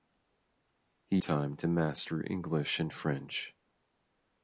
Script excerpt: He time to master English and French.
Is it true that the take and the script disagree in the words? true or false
false